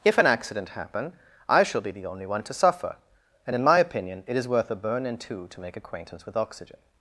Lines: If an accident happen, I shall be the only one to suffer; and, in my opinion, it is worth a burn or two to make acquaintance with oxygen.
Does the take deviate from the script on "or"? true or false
true